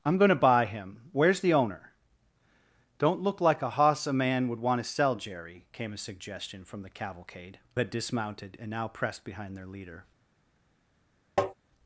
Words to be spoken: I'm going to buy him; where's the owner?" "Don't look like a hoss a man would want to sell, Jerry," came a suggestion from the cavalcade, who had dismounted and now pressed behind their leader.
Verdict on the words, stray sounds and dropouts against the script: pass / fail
fail